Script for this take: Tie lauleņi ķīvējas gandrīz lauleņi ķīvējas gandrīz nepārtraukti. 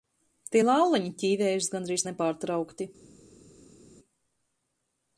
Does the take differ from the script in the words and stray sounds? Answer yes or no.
yes